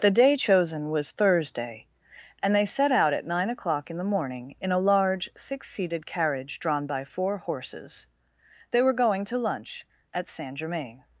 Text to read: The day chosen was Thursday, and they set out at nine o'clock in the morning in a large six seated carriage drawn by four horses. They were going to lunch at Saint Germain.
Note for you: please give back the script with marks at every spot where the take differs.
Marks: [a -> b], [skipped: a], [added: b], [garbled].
The day chosen was Thursday, and they set out at nine o'clock in the morning in a large six seated carriage drawn by four horses. They were going to lunch at Saint Germain.